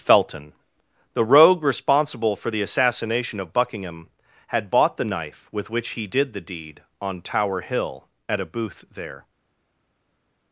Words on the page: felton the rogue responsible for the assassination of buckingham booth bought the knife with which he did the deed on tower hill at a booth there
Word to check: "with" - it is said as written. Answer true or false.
true